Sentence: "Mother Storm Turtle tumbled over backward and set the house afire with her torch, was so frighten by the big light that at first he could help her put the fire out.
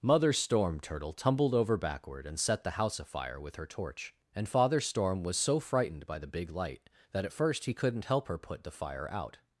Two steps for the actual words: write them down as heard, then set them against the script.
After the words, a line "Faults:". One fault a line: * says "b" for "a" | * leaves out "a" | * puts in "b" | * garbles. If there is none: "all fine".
"Mother Storm Turtle tumbled over backward and set the house afire with her torch, and Father Storm was so frightened by the big light that at first he couldn't help her put the fire out.
Faults:
* puts in "and Father Storm"
* says "frightened" for "frighten"
* says "couldn't" for "could"